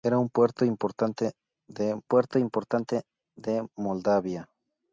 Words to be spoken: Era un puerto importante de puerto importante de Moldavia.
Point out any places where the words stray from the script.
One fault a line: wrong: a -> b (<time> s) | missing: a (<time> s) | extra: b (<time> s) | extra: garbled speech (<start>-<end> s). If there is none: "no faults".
no faults